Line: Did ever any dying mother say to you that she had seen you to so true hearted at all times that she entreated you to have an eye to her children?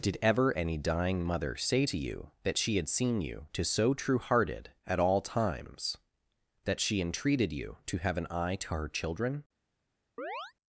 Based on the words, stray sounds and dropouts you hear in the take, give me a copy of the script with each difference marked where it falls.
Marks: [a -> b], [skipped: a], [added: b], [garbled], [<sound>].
Did ever any dying mother say to you that she had seen you to so true hearted at all times that she entreated you to have an eye to her children? [chirp]